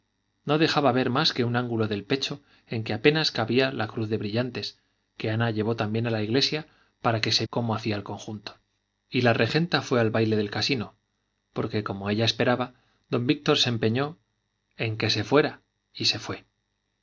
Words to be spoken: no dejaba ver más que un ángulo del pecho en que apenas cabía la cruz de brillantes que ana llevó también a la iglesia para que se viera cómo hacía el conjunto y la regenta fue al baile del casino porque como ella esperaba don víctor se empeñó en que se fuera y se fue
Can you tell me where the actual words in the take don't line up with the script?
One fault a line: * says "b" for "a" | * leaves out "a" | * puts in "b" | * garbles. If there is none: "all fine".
* leaves out "viera"